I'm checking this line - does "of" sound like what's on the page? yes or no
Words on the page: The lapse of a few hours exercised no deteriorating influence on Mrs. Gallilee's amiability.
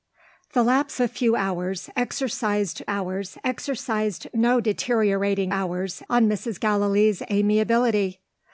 no